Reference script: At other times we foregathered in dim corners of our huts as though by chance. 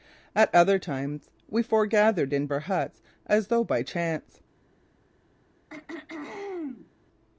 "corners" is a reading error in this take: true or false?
true